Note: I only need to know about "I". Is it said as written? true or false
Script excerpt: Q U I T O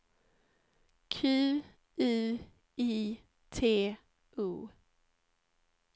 true